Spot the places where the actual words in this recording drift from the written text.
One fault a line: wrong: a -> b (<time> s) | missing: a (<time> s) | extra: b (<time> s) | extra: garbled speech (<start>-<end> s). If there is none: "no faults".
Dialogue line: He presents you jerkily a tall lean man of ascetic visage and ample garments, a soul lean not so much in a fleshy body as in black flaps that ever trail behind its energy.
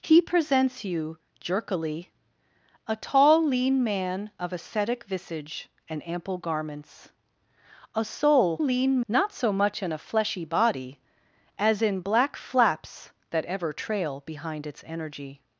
no faults